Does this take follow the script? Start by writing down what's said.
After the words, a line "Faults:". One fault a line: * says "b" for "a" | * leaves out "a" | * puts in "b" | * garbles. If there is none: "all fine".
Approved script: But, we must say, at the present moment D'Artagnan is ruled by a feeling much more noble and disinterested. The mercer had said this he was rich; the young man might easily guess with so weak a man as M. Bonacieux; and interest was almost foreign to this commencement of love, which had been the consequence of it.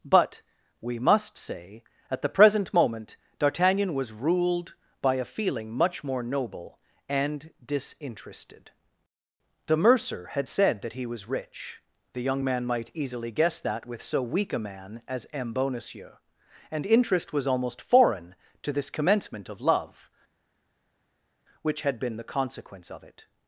But, we must say, at the present moment D'Artagnan was ruled by a feeling much more noble and disinterested. The mercer had said that he was rich; the young man might easily guess that with so weak a man as M. Bonacieux; and interest was almost foreign to this commencement of love, which had been the consequence of it.
Faults:
* says "was" for "is"
* says "that" for "this"
* puts in "that"